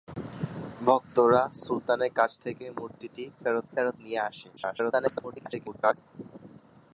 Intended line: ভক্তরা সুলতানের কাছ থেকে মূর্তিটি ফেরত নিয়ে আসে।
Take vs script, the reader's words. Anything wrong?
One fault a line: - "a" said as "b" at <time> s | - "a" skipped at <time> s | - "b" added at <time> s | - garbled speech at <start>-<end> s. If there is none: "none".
- "ফেরত" added at 3.7 s
- garbled speech at 4.6-5.9 s